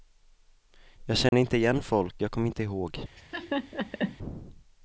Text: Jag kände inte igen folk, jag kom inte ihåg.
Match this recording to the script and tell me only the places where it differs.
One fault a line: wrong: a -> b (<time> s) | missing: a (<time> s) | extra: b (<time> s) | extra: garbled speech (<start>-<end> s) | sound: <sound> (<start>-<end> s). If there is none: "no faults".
sound: dropout (1.3-1.3 s)
sound: laugh (3.2-4.2 s)